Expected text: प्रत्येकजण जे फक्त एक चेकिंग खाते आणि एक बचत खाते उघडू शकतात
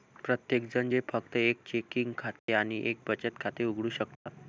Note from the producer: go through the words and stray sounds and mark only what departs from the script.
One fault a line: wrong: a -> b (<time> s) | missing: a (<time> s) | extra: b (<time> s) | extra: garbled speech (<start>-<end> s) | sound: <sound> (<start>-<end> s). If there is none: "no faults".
sound: dropout (2.4-2.5 s)
sound: dropout (4.1-4.3 s)